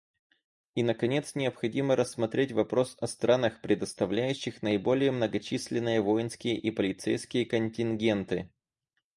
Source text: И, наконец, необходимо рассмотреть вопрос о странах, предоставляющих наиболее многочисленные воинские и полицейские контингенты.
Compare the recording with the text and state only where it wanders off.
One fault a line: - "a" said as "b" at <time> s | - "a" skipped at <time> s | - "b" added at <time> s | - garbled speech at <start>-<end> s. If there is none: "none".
none